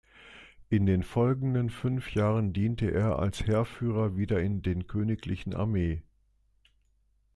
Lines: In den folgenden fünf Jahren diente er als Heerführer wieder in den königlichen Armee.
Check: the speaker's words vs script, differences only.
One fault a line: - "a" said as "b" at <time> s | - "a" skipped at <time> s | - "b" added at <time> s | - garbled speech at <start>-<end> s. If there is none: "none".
none